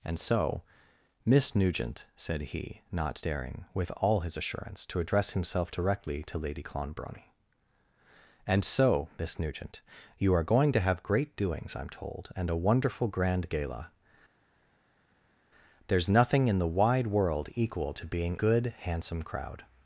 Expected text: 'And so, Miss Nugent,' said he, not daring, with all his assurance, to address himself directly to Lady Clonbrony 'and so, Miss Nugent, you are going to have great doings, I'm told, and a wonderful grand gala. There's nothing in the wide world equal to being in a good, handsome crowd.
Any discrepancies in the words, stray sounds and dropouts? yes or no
yes